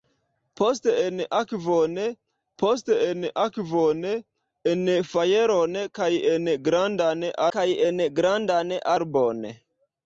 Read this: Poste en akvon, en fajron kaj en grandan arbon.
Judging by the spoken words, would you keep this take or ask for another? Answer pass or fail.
fail